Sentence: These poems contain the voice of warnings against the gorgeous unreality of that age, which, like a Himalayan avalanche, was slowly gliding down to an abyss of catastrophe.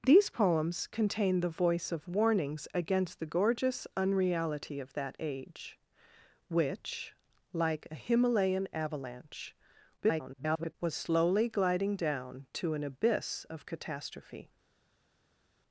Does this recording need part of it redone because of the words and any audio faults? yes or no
yes